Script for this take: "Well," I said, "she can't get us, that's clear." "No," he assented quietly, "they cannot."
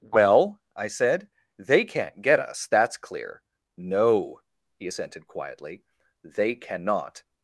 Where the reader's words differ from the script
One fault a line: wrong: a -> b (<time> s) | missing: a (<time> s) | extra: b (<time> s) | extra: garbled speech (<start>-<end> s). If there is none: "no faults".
wrong: she -> they (1.6 s)